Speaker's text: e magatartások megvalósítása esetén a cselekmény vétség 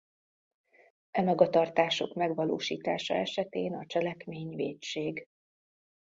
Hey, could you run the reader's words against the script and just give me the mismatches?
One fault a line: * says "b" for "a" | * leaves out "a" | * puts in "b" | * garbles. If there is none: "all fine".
all fine